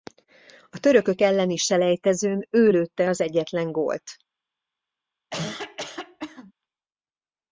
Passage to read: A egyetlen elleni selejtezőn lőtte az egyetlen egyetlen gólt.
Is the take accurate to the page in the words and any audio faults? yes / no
no